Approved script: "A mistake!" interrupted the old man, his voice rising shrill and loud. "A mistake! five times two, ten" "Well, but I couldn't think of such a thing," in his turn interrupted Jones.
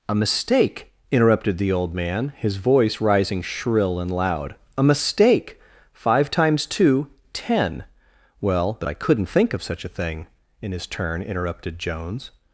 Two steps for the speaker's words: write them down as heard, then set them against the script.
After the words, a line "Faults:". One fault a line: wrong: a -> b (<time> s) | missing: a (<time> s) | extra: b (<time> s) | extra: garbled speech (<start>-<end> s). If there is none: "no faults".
"A mistake!" interrupted the old man, his voice rising shrill and loud. "A mistake! five times two, ten" "Well, but I couldn't think of such a thing," in his turn interrupted Jones.
Faults:
no faults